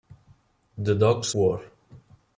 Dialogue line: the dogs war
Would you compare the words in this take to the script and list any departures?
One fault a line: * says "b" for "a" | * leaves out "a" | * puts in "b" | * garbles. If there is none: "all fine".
all fine